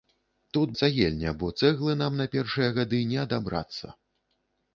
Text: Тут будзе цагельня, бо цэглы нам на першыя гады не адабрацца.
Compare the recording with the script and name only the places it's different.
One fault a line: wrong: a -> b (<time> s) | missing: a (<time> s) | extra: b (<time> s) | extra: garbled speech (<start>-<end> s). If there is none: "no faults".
missing: будзе (0.7 s)